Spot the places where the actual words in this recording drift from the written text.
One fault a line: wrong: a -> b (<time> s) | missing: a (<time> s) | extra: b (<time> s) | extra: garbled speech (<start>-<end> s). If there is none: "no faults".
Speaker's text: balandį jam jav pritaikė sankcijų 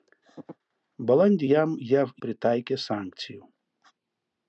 no faults